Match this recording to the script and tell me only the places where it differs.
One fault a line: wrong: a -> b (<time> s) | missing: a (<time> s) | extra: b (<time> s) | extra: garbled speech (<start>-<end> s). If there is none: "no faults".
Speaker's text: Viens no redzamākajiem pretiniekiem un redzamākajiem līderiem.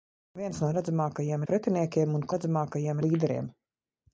no faults